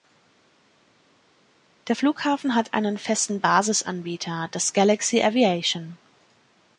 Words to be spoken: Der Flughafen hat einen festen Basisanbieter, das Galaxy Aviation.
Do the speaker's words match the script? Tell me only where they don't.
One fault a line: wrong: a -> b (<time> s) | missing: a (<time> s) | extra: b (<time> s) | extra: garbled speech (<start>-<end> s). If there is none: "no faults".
no faults